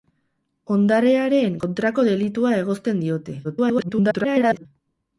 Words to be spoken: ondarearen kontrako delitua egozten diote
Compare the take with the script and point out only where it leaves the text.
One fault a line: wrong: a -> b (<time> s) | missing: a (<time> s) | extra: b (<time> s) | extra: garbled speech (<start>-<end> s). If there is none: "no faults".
extra: garbled speech (3.4-4.7 s)